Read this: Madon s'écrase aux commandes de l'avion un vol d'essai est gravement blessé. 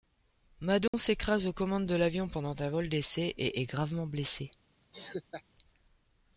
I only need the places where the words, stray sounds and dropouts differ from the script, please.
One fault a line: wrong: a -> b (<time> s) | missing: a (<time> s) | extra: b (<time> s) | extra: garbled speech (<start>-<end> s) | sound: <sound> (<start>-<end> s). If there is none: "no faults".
sound: dropout (0.9-0.9 s)
extra: pendant (2.3 s)
extra: et (3.4 s)
sound: laugh (4.9-5.4 s)